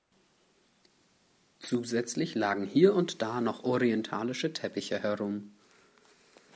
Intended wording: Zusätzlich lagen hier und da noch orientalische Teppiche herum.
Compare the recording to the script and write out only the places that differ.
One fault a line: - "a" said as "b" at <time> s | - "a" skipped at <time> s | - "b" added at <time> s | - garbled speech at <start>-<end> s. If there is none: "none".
none